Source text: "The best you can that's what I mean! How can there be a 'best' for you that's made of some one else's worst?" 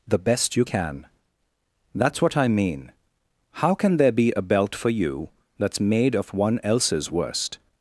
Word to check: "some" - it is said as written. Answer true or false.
false